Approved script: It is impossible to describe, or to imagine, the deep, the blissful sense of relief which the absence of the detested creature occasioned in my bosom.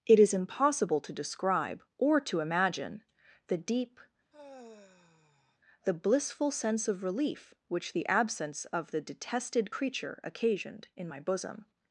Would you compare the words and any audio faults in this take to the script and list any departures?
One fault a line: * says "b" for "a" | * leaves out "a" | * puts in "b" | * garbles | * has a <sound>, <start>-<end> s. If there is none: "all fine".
* has a sigh, 4.3-5.6 s